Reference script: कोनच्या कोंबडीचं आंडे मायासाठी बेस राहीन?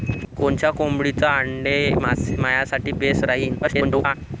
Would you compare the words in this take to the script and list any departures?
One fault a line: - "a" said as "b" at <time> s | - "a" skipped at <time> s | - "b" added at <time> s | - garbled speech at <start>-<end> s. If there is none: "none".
- garbled speech at 3.6-4.1 s